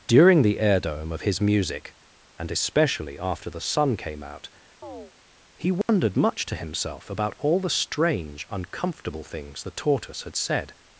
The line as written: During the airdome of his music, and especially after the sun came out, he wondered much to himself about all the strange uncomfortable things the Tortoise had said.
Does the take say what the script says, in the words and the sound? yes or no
no